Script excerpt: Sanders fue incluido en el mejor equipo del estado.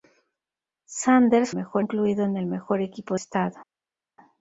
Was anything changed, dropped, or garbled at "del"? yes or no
yes